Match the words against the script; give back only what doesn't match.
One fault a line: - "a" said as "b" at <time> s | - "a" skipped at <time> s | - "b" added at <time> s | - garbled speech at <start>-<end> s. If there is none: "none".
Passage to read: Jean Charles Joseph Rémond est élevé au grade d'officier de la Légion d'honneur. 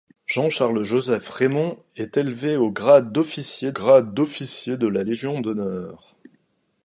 - "grade d'officier" added at 3.7 s